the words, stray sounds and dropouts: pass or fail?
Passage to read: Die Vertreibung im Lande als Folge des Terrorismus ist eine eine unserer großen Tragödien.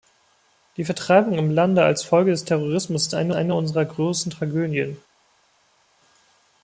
pass